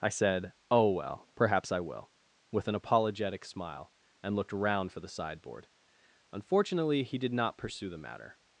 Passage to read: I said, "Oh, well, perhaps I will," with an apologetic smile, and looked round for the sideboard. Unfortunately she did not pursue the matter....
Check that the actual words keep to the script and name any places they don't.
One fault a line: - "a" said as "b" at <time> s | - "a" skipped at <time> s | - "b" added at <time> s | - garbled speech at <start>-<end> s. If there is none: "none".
- "she" said as "he" at 7.0 s